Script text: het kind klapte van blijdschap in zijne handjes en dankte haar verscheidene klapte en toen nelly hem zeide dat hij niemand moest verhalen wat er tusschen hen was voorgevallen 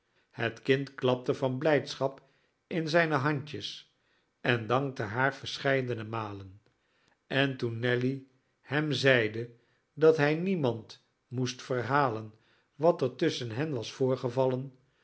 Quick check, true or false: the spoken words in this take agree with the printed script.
false